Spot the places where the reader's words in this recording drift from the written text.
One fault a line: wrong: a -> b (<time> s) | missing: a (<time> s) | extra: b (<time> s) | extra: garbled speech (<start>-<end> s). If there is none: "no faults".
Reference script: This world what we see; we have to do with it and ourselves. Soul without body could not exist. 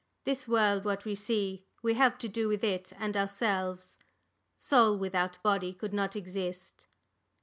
no faults